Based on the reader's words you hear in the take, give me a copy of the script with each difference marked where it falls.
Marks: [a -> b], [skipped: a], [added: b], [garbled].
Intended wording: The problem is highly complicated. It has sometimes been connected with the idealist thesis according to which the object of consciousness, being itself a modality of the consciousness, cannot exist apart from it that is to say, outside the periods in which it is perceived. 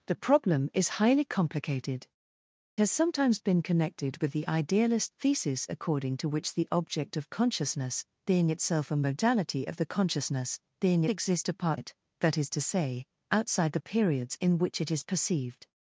The problem is highly complicated. [skipped: It] has sometimes been connected with the idealist thesis according to which the object of consciousness, being itself a modality of the consciousness, [cannot -> being] exist apart [skipped: from] it that is to say, outside the periods in which it is perceived.